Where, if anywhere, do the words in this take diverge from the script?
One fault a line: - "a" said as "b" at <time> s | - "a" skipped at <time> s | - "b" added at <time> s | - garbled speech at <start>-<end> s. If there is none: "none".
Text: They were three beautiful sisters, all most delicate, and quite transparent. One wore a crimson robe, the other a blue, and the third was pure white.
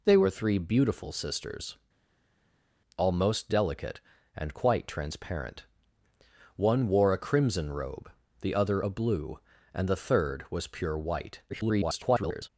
- garbled speech at 11.5-12.5 s